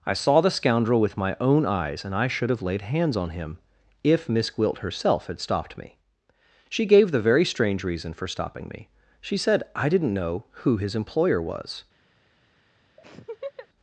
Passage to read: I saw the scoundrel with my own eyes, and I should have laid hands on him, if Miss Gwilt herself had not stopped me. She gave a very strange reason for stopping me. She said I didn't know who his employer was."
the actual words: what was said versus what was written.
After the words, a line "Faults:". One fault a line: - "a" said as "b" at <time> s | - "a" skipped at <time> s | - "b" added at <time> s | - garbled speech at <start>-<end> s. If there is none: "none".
I saw the scoundrel with my own eyes, and I should have laid hands on him, if Miss Gwilt herself had stopped me. She gave the very strange reason for stopping me. She said I didn't know who his employer was."
Faults:
- "not" skipped at 5.4 s
- "a" said as "the" at 7.1 s